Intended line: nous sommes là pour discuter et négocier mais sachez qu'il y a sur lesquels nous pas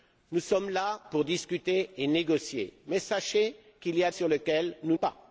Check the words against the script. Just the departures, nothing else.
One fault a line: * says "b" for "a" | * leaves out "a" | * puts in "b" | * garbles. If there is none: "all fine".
all fine